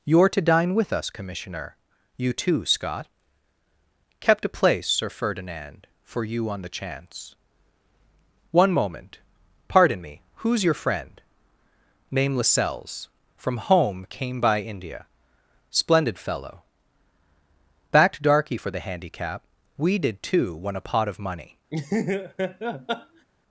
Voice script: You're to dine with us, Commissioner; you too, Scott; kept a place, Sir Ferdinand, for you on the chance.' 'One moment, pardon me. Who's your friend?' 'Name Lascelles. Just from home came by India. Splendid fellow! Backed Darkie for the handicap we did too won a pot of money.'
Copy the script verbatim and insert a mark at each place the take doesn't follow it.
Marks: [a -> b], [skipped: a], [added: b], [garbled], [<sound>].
You're to dine with us, Commissioner; you too, Scott; kept a place, Sir Ferdinand, for you on the chance.' 'One moment, pardon me. Who's your friend?' 'Name Lascelles. [skipped: Just] from home came by India. Splendid fellow! Backed Darkie for the handicap we did too won a pot of money.' [laugh]